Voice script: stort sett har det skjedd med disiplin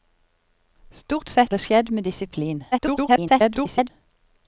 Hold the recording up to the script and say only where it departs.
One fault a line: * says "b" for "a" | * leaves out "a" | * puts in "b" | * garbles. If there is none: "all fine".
* leaves out "har"
* garbles